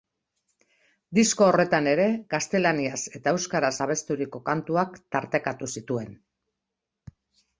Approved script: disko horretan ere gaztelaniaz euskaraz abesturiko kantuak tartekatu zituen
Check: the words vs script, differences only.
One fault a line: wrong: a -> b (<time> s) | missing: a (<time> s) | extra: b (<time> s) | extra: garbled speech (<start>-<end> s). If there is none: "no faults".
extra: eta (3.2 s)